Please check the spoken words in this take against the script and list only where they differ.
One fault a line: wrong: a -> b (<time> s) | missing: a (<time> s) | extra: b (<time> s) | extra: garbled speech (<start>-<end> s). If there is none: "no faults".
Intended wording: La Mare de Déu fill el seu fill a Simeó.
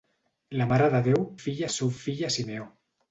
no faults